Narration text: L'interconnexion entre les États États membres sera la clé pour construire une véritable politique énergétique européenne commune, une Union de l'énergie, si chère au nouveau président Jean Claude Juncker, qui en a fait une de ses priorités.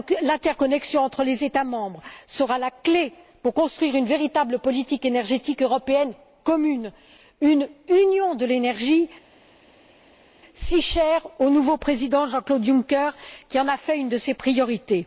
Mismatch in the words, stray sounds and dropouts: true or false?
true